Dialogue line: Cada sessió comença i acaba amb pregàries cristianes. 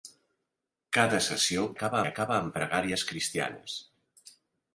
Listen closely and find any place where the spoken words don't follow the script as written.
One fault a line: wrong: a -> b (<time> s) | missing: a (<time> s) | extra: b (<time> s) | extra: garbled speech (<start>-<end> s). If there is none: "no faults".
wrong: comença -> acaba (1.8 s)